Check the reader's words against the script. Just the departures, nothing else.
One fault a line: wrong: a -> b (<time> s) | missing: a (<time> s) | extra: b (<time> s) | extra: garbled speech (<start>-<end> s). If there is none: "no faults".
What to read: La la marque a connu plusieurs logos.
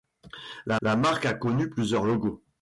no faults